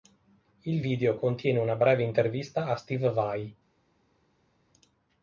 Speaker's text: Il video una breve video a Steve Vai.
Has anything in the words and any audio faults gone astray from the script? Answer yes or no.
yes